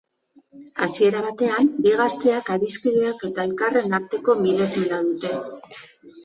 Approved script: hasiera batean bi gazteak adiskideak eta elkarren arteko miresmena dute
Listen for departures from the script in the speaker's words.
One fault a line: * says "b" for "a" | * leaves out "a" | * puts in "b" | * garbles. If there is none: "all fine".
all fine